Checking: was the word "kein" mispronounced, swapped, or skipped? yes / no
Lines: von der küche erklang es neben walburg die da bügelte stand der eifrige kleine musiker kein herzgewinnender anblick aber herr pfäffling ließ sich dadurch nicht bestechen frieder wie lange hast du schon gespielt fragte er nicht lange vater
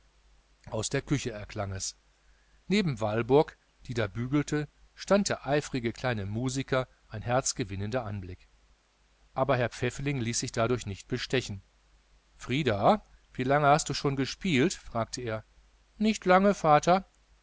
yes